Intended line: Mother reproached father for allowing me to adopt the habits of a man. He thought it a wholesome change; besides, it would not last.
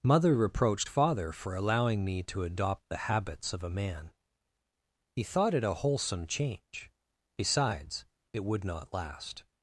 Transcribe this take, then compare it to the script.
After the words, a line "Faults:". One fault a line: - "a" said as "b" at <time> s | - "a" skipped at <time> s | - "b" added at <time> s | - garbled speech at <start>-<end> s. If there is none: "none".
Mother reproached father for allowing me to adopt the habits of a man. He thought it a wholesome change; besides, it would not last.
Faults:
none